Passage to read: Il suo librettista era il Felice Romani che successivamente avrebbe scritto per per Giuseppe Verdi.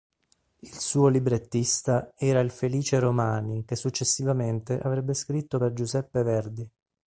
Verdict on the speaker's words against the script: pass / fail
fail